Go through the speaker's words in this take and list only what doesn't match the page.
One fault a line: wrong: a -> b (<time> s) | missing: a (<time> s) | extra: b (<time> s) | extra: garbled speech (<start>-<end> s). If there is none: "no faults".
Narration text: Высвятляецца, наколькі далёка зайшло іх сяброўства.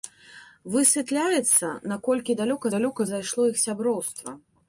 extra: далёка (2.8 s)